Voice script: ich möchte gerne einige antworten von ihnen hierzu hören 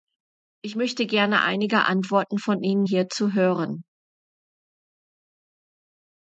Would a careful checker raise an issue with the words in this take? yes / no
no